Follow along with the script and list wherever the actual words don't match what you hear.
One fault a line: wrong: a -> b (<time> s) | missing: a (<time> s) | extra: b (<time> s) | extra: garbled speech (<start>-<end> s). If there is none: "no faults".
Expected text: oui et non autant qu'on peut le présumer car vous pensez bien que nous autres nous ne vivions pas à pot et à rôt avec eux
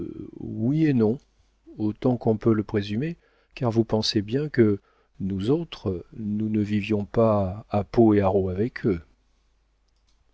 no faults